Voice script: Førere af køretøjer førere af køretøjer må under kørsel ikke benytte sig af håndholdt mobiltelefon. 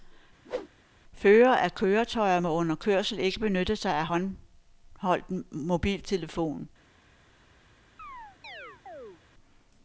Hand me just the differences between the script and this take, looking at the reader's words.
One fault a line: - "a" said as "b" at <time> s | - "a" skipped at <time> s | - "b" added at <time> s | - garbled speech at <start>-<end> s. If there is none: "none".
- "førere af køretøjer" skipped at 2.4 s